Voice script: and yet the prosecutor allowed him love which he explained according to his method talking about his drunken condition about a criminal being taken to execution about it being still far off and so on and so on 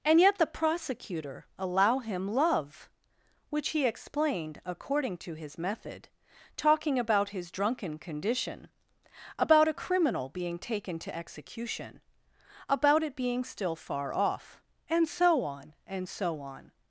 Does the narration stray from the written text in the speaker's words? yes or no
yes